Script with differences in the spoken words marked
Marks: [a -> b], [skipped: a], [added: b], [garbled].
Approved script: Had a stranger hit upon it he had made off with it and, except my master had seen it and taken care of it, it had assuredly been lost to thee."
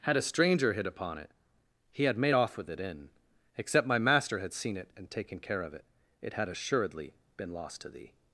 Had a stranger hit upon it he had made off with it [and, -> in] except my master had seen it and taken care of it, it had assuredly been lost to thee."